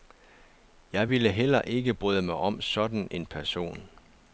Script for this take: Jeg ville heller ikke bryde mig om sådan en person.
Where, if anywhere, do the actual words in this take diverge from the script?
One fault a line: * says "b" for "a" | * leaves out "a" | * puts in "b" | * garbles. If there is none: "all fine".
all fine